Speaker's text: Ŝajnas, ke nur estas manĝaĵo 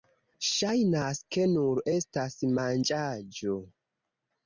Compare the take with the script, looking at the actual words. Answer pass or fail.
pass